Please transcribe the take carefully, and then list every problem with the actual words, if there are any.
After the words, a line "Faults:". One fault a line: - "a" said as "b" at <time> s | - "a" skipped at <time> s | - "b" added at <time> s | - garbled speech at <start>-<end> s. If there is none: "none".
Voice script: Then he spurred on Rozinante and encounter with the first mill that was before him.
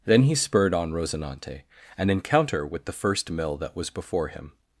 Then he spurred on Rozinante and encounter with the first mill that was before him.
Faults:
none